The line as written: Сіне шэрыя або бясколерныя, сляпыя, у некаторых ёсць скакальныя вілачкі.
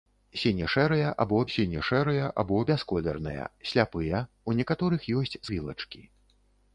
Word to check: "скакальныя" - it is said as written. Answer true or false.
false